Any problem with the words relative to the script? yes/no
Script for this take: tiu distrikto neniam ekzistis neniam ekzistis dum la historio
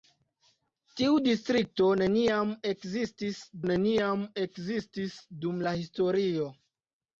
no